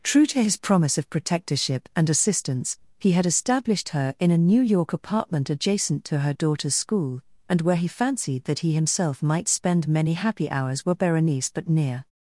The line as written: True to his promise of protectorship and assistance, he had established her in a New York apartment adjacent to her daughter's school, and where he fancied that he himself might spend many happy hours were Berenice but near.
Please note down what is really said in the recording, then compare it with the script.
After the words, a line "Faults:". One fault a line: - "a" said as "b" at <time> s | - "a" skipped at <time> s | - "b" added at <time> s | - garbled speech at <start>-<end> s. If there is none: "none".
True to his promise of protectorship and assistance, he had established her in a New York apartment adjacent to her daughter's school, and where he fancied that he himself might spend many happy hours were Berenice but near.
Faults:
none